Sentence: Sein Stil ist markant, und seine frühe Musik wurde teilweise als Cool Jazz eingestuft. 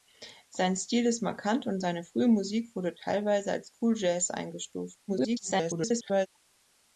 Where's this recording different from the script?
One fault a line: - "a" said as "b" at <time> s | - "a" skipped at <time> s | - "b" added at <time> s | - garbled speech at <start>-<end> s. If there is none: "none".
- garbled speech at 5.1-6.3 s